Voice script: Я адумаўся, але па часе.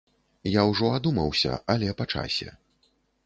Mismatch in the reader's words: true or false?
true